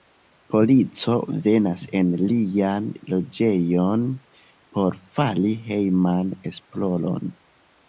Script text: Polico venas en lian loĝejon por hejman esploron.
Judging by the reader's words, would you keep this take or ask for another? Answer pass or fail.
fail